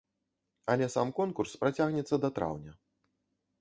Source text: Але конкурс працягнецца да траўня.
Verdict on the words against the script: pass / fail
fail